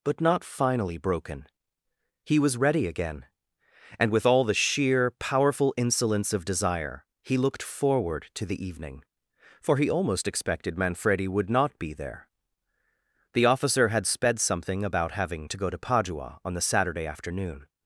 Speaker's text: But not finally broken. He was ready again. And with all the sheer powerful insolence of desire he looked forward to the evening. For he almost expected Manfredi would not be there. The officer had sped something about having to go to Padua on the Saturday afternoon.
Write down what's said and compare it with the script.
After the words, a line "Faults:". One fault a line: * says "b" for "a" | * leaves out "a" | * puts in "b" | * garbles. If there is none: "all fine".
But not finally broken. He was ready again. And with all the sheer powerful insolence of desire he looked forward to the evening. For he almost expected Manfredi would not be there. The officer had sped something about having to go to Padua on the Saturday afternoon.
Faults:
all fine